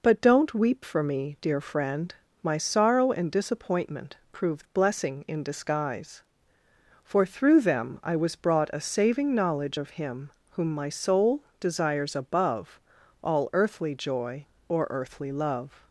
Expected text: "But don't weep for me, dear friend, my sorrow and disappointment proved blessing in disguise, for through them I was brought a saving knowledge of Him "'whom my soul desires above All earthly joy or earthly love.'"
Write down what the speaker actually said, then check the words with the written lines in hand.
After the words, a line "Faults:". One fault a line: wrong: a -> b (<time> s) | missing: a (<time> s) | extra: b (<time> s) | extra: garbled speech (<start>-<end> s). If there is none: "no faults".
"But don't weep for me, dear friend, my sorrow and disappointment proved blessing in disguise, for through them I was brought a saving knowledge of Him "'whom my soul desires above All earthly joy or earthly love.'"
Faults:
no faults